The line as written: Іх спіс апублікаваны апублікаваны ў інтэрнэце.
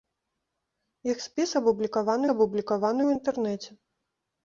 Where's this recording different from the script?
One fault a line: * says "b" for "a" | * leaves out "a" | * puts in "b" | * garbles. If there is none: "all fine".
all fine